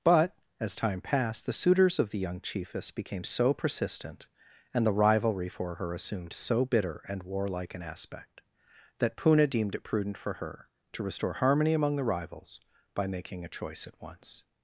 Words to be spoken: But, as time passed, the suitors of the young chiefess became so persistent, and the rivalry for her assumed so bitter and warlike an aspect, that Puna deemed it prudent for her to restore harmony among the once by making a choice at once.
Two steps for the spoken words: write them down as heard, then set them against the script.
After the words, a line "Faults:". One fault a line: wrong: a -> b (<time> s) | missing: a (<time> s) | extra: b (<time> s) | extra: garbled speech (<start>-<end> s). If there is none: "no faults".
But, as time passed, the suitors of the young chiefess became so persistent, and the rivalry for her assumed so bitter and warlike an aspect, that Puna deemed it prudent for her to restore harmony among the rivals by making a choice at once.
Faults:
wrong: once -> rivals (12.0 s)